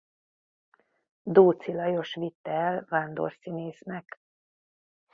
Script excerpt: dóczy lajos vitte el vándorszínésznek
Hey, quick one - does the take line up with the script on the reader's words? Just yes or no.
yes